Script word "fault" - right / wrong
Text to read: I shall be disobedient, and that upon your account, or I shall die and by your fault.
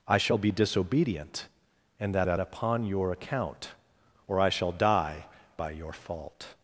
right